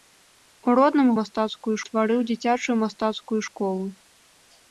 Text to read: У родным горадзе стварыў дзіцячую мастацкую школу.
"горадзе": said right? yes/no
no